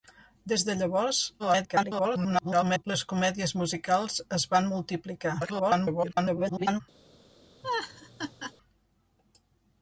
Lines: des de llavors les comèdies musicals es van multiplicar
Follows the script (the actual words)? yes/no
no